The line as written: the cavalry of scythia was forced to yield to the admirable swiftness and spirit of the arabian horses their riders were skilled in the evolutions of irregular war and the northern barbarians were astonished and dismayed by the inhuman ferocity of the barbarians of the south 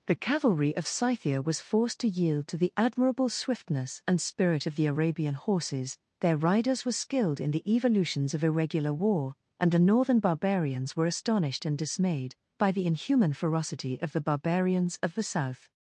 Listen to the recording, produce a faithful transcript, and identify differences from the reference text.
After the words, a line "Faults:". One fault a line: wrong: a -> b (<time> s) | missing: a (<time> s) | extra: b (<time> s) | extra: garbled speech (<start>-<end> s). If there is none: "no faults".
the cavalry of scythia was forced to yield to the admirable swiftness and spirit of the arabian horses their riders were skilled in the evolutions of irregular war and the northern barbarians were astonished and dismayed by the inhuman ferocity of the barbarians of the south
Faults:
no faults